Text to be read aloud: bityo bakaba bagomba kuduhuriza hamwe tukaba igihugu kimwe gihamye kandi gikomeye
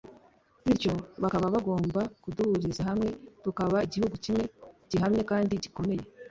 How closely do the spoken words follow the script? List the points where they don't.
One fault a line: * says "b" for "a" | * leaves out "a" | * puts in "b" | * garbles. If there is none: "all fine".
all fine